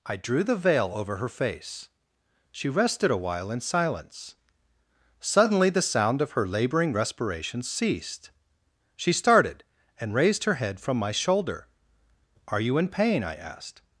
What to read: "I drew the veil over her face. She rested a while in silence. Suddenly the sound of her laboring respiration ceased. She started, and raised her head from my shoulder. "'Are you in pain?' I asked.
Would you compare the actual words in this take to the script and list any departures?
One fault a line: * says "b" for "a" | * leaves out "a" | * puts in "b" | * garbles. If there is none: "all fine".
all fine